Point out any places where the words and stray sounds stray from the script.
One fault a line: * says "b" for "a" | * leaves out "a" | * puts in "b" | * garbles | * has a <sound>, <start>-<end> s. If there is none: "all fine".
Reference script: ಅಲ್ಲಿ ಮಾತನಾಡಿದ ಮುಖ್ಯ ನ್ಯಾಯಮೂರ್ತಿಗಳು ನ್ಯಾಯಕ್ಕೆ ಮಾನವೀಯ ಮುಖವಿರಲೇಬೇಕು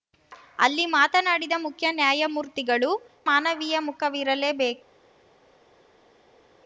* leaves out "ನ್ಯಾಯಕ್ಕೆ"